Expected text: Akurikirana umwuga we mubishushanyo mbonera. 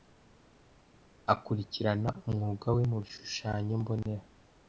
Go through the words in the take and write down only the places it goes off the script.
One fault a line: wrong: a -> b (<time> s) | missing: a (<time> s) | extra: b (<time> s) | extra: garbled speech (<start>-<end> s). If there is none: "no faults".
no faults